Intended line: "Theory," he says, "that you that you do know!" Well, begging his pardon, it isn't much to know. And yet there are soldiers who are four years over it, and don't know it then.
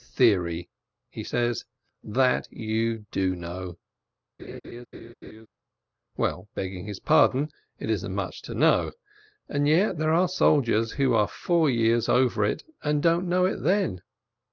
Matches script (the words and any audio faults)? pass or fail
fail